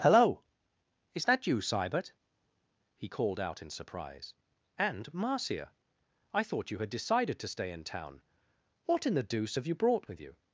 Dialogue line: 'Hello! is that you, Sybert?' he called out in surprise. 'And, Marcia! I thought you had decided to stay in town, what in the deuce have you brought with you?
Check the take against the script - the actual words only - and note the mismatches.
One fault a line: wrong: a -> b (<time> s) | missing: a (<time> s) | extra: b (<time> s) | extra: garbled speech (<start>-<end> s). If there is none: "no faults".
no faults